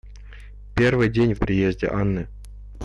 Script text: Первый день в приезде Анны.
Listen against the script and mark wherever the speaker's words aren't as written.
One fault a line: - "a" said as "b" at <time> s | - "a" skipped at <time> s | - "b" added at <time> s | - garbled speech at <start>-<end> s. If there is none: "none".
none